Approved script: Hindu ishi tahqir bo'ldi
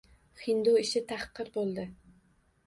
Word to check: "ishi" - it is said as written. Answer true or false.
true